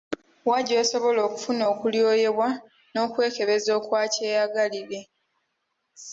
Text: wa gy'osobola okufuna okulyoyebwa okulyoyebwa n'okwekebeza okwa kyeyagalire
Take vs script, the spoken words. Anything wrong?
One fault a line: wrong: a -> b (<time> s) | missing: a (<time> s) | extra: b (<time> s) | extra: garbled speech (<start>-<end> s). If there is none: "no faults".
missing: okulyoyebwa (2.5 s)